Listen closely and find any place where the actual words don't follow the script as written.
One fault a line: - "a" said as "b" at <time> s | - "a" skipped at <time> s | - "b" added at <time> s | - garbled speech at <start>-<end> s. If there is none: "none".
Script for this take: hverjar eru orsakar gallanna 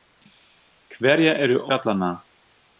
- "orsakar" skipped at 1.6 s